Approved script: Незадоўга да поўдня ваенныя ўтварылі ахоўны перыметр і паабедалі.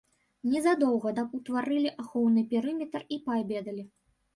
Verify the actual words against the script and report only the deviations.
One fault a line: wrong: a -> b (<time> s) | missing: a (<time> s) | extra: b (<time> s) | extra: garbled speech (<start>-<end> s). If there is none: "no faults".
missing: поўдня ваенныя (1.2 s)